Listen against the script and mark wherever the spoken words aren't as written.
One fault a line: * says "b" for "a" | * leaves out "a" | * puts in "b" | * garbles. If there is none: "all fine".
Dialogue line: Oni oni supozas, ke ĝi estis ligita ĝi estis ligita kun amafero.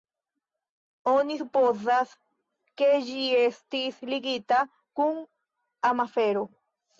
* leaves out "oni"
* leaves out "ĝi estis ligita"